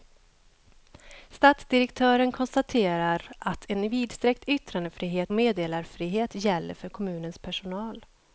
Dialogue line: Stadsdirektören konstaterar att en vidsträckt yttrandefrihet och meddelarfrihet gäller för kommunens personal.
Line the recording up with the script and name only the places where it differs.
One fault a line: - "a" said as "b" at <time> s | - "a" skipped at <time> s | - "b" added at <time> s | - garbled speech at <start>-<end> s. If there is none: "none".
- "och" skipped at 5.3 s